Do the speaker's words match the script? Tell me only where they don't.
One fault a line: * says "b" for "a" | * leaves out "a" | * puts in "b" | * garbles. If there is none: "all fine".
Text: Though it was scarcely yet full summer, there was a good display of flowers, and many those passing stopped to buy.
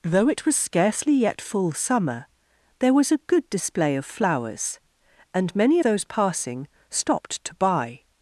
all fine